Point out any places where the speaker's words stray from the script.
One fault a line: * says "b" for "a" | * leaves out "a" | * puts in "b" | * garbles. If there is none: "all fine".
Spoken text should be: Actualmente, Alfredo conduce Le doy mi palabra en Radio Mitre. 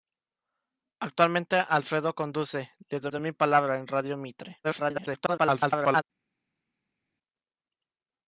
* puts in "doy"
* garbles